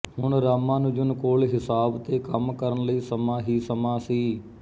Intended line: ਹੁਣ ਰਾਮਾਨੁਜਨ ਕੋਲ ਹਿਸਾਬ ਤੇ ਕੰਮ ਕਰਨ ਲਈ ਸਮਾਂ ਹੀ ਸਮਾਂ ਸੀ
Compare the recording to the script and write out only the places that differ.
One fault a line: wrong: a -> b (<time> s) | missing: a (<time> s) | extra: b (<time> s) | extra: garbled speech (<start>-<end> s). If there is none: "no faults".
no faults